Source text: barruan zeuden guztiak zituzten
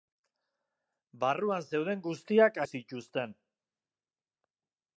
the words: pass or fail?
pass